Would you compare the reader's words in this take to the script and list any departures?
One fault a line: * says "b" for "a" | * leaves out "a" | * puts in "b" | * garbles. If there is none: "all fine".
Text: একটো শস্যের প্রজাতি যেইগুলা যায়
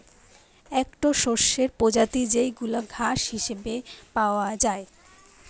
* puts in "ঘাস হিসেবে পাওয়া"